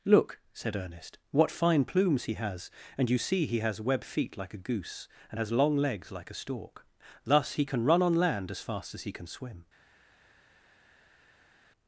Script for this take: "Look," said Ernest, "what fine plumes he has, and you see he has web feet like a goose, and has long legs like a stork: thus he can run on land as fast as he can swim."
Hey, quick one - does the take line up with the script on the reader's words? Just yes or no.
yes